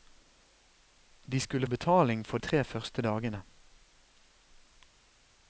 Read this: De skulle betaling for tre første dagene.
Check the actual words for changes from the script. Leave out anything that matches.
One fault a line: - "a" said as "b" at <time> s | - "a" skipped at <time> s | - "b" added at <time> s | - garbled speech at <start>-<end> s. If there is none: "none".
none